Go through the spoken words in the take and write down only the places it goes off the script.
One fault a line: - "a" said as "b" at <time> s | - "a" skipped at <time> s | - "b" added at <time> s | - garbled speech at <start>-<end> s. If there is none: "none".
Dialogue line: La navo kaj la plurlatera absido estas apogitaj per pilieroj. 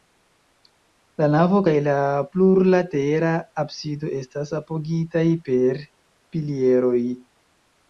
none